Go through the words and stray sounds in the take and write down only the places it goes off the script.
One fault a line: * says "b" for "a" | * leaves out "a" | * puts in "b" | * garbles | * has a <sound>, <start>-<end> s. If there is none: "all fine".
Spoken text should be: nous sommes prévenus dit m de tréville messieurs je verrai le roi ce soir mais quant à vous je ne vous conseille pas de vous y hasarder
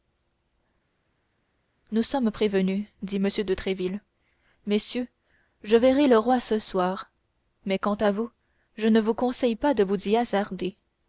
all fine